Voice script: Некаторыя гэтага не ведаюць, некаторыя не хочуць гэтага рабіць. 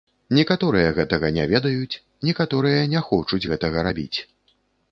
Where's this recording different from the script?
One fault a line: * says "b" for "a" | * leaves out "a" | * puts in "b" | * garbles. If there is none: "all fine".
all fine